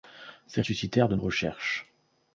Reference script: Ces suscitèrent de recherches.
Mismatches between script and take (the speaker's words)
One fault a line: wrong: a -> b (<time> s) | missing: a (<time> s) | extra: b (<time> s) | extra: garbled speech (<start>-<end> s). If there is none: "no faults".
no faults